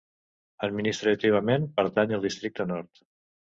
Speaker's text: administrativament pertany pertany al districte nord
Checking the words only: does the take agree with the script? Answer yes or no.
no